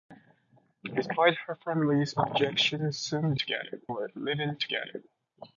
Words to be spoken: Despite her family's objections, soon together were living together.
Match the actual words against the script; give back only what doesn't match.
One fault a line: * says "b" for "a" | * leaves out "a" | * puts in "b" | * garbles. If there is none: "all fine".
all fine